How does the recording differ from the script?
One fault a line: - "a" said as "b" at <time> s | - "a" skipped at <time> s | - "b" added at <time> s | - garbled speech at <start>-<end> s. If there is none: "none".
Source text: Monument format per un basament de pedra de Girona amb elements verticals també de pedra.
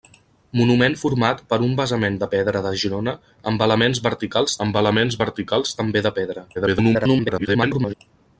- "amb elements verticals" added at 4.7 s
- garbled speech at 6.5-7.9 s